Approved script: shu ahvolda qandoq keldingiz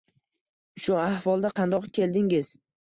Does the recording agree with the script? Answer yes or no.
yes